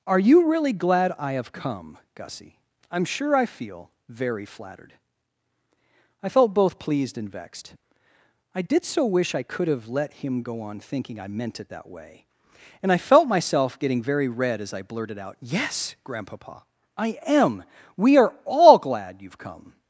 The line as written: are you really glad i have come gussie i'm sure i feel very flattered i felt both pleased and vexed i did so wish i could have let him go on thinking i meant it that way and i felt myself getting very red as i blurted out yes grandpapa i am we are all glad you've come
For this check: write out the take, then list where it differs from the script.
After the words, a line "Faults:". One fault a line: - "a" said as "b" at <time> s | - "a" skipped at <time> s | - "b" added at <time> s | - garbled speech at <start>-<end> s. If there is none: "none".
are you really glad i have come gussie i'm sure i feel very flattered i felt both pleased and vexed i did so wish i could have let him go on thinking i meant it that way and i felt myself getting very red as i blurted out yes grandpapa i am we are all glad you've come
Faults:
none